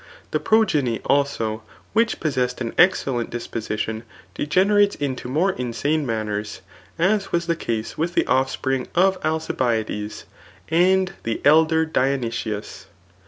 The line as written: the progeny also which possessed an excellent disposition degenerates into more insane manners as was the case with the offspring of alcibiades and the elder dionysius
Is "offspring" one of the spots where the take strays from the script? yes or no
no